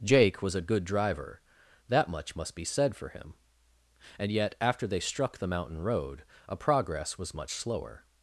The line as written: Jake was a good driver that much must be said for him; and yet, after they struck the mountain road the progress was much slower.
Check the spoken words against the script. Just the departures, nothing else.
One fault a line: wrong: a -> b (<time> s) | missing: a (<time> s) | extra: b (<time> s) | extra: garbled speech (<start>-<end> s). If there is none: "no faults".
wrong: the -> a (6.5 s)